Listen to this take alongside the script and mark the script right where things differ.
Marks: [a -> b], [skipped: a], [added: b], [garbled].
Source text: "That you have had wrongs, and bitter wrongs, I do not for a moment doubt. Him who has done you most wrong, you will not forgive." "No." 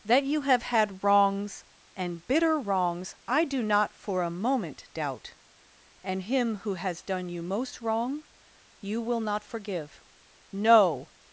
"That you have had wrongs, and bitter wrongs, I do not for a moment doubt. [added: And] Him who has done you most wrong, you will not forgive." "No."